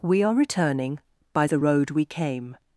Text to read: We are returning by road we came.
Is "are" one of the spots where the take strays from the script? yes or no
no